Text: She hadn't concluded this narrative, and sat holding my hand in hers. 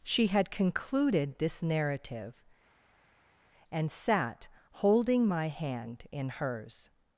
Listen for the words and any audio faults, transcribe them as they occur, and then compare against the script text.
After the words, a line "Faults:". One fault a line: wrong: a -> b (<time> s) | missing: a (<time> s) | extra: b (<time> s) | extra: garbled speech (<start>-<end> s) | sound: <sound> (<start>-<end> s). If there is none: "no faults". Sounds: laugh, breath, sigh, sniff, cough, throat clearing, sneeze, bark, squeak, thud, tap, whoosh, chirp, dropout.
She had concluded this narrative, and sat holding my hand in hers.
Faults:
wrong: hadn't -> had (0.3 s)